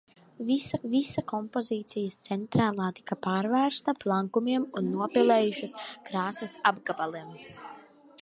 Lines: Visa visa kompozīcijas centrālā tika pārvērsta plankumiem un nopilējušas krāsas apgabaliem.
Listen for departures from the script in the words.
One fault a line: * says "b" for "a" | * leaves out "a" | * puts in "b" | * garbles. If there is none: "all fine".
all fine